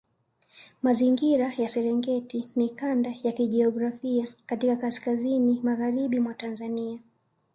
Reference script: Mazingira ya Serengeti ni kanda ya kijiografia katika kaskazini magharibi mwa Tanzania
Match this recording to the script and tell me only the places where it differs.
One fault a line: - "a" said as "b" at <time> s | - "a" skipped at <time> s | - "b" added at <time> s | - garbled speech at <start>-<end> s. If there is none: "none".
none